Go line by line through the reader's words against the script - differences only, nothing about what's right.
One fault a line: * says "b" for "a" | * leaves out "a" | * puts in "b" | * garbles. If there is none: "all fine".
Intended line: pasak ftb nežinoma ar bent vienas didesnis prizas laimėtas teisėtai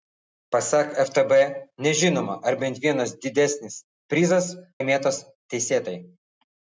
all fine